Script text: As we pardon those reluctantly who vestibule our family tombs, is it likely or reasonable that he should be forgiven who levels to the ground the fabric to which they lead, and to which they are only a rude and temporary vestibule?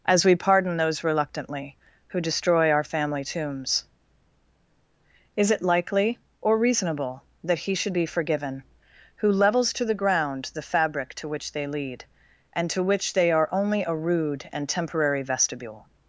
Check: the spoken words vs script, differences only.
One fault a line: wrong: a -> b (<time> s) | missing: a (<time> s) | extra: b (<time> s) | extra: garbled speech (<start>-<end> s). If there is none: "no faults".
wrong: vestibule -> destroy (2.2 s)